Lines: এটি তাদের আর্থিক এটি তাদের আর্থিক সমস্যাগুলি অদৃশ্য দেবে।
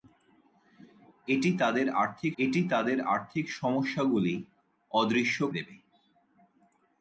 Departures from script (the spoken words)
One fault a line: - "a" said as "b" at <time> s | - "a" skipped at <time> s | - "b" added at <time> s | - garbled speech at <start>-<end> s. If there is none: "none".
none